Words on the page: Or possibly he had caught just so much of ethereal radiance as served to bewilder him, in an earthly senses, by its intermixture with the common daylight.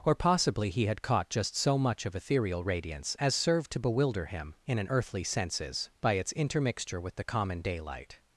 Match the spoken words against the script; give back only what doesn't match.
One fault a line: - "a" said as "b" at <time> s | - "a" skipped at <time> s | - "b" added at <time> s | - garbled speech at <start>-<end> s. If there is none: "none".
none